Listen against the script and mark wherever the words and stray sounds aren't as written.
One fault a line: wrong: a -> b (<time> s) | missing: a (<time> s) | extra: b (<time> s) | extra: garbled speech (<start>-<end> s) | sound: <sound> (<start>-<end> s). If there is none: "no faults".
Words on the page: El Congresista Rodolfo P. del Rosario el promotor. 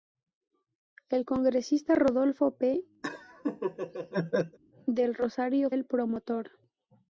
sound: laugh (3.0-4.6 s)